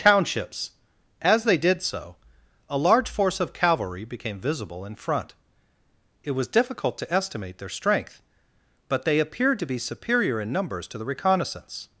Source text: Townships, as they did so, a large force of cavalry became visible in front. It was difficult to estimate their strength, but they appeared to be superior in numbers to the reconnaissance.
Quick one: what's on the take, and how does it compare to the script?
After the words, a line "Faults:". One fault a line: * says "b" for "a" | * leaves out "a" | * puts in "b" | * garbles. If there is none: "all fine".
Townships, as they did so, a large force of cavalry became visible in front. It was difficult to estimate their strength, but they appeared to be superior in numbers to the reconnaissance.
Faults:
all fine